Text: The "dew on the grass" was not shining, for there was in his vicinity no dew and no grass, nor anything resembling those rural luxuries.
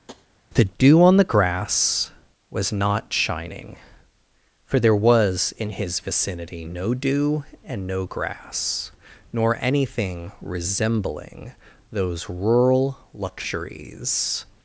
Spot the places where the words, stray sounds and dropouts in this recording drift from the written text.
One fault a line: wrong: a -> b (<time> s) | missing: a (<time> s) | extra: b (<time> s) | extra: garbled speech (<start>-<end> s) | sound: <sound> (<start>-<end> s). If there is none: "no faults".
sound: tap (0.1-0.3 s)